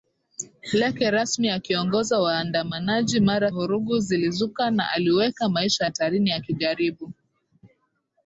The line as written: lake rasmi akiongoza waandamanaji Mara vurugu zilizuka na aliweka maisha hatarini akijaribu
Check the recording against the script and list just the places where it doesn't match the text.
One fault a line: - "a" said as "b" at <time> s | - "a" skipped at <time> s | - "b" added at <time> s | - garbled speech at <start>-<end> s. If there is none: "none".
none